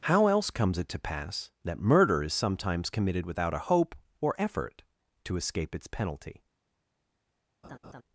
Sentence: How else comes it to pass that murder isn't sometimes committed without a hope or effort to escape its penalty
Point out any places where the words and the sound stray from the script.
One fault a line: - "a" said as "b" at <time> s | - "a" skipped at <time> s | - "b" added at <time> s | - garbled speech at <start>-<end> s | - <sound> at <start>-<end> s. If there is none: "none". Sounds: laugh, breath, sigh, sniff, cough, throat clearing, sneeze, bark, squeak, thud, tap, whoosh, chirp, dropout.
- "isn't" said as "is" at 2.2 s
- laugh at 7.6-8.0 s